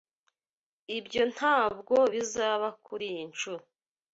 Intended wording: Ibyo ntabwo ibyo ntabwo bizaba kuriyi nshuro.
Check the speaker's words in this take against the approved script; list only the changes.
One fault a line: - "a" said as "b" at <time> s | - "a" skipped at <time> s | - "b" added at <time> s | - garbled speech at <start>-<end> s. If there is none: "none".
- "ibyo ntabwo" skipped at 1.9 s